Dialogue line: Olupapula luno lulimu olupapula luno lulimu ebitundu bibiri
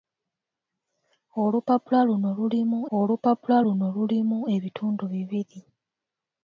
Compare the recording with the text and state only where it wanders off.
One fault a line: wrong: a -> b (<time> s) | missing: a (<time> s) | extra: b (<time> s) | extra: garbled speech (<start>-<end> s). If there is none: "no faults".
no faults